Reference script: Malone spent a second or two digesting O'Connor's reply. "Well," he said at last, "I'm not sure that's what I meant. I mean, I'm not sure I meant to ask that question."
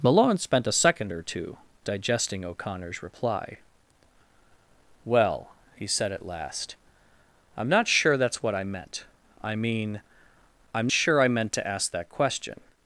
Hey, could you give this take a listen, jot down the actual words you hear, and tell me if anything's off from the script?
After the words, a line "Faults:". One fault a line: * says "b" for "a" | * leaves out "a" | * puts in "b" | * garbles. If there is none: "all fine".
Malone spent a second or two digesting O'Connor's reply. "Well," he said at last, "I'm not sure that's what I meant. I mean, I'm sure I meant to ask that question."
Faults:
* leaves out "not"